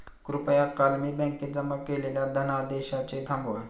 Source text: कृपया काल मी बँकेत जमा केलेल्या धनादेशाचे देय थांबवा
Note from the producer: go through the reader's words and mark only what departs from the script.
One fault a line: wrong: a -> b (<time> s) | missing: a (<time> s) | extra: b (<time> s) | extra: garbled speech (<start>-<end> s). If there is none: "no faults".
missing: देय (3.3 s)